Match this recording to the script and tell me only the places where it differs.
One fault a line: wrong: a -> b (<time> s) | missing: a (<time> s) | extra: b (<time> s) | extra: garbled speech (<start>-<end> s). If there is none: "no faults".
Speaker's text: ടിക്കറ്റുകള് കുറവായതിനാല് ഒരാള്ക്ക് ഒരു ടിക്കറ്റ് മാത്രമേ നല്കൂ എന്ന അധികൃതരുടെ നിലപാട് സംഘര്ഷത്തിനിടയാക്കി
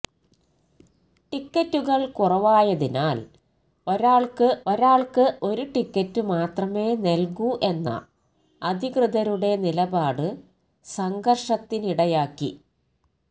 extra: ഒരാള്ക്ക് (4.7 s)